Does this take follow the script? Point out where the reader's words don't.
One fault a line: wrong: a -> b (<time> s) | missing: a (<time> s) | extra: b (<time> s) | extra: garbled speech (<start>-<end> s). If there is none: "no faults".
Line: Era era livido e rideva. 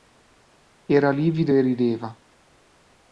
missing: era (1.1 s)